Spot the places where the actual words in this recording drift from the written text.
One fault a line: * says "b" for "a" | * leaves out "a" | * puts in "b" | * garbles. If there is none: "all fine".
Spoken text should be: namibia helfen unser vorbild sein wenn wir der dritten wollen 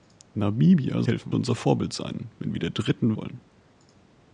all fine